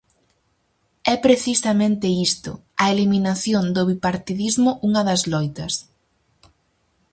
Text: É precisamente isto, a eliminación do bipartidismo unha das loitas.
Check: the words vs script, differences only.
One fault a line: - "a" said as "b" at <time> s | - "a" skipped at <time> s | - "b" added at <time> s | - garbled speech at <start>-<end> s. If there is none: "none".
none